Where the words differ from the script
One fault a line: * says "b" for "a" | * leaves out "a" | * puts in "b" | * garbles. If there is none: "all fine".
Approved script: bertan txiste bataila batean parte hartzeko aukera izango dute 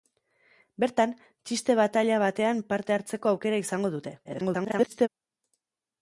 * garbles